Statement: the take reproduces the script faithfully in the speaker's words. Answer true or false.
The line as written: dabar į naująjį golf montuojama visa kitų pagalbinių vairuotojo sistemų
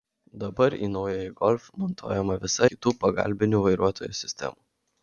true